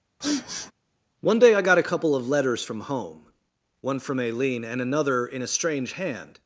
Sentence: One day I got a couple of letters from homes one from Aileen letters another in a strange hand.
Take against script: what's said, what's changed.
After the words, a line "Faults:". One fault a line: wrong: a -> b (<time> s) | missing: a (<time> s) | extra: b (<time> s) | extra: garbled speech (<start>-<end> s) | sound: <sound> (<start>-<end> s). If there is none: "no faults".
One day I got a couple of letters from home one from Aileen and another in a strange hand.
Faults:
sound: sniff (0.2-0.7 s)
wrong: homes -> home (2.8 s)
wrong: letters -> and (4.6 s)